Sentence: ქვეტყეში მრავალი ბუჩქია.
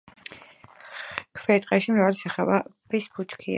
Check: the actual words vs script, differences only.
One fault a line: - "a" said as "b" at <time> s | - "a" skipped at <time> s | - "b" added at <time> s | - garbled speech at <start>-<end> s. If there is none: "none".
- "სახეობის" added at 2.2 s